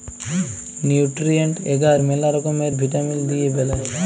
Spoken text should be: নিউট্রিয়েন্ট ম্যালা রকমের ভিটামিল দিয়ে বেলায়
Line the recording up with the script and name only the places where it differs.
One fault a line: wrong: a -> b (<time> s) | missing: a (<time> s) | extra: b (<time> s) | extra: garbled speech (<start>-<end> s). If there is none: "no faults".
extra: এগার (1.6 s)